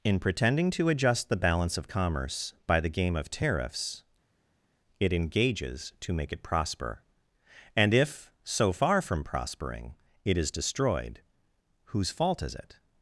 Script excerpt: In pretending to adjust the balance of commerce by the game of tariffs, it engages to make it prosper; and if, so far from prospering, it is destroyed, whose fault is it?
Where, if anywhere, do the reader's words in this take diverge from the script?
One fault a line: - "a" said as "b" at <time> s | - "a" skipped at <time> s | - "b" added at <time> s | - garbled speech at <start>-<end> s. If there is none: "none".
none